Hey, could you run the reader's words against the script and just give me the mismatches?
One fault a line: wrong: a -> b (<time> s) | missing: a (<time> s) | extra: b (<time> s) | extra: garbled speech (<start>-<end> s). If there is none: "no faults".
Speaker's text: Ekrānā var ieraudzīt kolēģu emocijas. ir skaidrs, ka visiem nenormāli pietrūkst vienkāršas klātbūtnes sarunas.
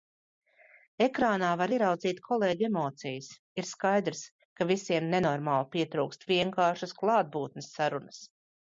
no faults